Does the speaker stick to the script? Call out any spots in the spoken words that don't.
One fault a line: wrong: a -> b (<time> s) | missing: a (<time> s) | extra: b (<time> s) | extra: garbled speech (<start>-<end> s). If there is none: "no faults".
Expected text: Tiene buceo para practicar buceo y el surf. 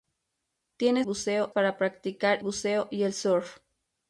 no faults